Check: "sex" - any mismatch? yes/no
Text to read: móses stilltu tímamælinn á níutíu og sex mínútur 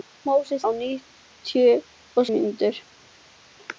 yes